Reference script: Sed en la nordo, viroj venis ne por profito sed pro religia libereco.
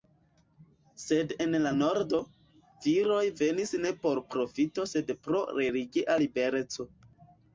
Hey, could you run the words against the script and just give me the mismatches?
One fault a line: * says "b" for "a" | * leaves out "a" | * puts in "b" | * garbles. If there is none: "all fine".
all fine